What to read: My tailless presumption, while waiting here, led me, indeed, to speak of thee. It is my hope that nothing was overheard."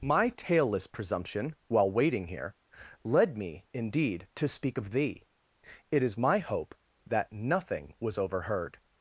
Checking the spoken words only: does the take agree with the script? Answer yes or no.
yes